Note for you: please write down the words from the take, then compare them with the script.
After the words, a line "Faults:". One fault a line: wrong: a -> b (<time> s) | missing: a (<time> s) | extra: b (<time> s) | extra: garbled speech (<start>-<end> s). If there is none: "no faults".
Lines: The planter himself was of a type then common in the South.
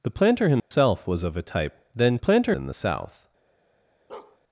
The planter himself was of a type then planter in the South.
Faults:
wrong: common -> planter (2.2 s)